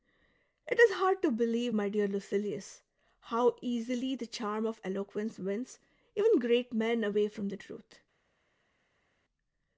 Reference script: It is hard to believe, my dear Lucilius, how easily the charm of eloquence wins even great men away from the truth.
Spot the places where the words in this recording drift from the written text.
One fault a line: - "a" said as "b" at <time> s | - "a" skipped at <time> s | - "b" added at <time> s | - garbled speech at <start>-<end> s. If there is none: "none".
none